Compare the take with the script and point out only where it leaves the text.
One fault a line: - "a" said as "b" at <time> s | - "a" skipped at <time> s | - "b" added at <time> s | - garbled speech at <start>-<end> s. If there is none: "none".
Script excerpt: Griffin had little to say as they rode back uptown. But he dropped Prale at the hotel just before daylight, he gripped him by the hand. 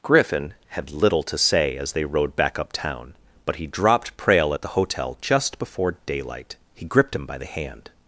none